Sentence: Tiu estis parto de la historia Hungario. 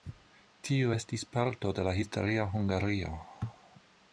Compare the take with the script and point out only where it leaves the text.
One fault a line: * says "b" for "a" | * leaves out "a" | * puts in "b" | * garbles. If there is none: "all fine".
all fine